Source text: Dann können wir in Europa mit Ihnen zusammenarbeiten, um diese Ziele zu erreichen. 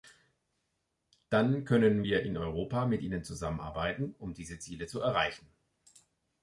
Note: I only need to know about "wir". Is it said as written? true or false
true